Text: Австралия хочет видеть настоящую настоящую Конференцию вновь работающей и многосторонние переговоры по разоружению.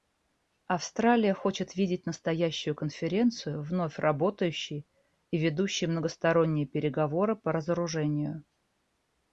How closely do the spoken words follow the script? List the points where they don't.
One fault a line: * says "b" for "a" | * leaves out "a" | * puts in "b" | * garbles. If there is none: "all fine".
* leaves out "настоящую"
* puts in "ведущей"